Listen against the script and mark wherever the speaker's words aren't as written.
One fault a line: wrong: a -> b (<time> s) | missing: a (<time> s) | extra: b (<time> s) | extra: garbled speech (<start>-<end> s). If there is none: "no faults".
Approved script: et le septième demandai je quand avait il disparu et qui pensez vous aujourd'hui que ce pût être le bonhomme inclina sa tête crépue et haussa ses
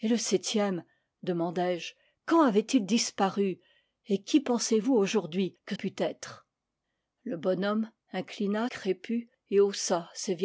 missing: ce (5.8 s)
missing: sa tête (8.7 s)